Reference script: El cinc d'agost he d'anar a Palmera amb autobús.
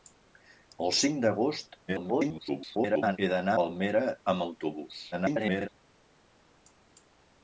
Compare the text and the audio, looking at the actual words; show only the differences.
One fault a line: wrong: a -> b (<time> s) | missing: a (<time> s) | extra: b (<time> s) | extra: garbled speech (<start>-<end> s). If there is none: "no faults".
extra: garbled speech (1.9-3.2 s)
missing: a (3.6 s)
extra: garbled speech (5.1-5.7 s)